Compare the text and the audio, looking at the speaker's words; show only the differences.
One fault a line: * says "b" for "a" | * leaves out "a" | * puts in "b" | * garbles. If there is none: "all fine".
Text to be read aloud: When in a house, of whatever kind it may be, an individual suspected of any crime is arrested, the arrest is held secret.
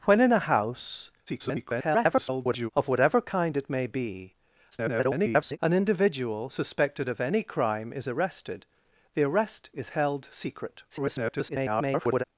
* garbles
* garbles
* garbles